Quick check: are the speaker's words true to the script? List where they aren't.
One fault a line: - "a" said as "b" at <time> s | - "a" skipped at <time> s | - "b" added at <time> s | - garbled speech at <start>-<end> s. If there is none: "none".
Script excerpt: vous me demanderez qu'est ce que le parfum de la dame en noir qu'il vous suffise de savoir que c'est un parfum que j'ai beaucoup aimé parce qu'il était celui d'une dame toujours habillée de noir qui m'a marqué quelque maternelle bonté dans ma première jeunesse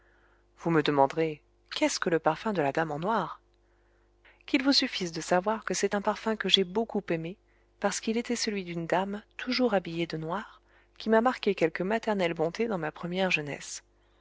none